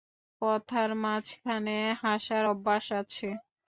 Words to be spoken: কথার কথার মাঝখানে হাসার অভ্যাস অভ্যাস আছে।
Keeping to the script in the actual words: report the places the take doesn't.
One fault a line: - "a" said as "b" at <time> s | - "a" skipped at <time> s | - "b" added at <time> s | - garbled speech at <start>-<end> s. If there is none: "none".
- "কথার" skipped at 0.9 s
- "অভ্যাস" skipped at 2.9 s